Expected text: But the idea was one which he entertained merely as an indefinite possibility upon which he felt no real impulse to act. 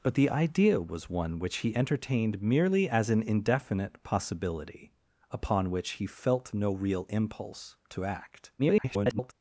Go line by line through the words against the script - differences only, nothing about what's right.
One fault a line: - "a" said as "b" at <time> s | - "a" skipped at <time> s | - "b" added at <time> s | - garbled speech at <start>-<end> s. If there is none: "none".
- garbled speech at 8.6-9.3 s